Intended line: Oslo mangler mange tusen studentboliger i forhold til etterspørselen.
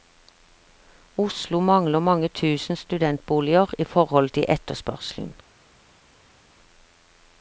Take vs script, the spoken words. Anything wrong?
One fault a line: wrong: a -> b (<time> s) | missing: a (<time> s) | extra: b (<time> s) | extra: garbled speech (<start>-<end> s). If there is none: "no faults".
no faults